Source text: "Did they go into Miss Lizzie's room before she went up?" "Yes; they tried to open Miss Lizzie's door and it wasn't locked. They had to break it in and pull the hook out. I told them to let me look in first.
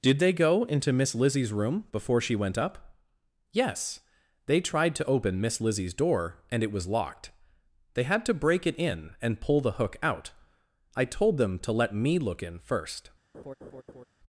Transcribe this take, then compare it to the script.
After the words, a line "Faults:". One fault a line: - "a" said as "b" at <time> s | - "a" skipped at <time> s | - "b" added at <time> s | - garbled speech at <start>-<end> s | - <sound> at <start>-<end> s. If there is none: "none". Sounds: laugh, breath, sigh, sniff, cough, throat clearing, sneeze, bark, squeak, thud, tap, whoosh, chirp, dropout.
"Did they go into Miss Lizzie's room before she went up?" "Yes; they tried to open Miss Lizzie's door and it was locked. They had to break it in and pull the hook out. I told them to let me look in first.
Faults:
- "wasn't" said as "was" at 6.7 s
- laugh at 13.3-14.0 s